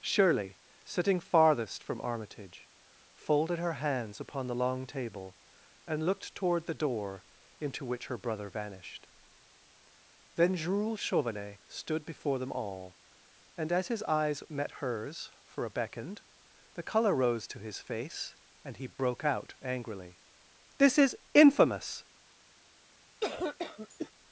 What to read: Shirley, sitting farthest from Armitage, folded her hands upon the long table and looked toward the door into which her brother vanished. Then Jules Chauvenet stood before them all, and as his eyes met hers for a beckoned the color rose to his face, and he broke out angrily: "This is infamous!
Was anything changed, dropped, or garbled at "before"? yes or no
no